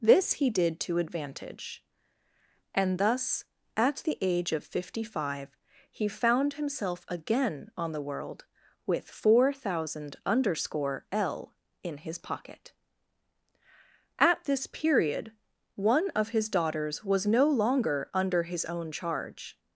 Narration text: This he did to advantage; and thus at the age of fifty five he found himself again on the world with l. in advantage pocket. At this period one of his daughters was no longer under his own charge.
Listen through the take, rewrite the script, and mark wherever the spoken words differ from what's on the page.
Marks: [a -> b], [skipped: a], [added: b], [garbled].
This he did to advantage; and thus at the age of fifty five he found himself again on the world with [added: four thousand underscore] l. in [advantage -> his] pocket. At this period one of his daughters was no longer under his own charge.